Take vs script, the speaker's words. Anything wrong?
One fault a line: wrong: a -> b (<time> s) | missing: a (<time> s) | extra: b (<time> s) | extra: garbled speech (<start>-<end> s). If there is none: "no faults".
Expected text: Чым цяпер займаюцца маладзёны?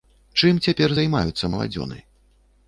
no faults